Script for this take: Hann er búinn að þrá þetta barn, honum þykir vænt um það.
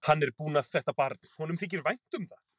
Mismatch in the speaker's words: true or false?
true